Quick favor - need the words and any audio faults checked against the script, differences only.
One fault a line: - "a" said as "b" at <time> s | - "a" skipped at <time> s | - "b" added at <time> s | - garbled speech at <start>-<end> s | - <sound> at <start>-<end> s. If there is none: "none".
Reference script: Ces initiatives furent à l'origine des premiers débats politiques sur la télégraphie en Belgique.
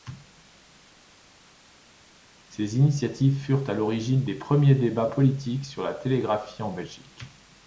none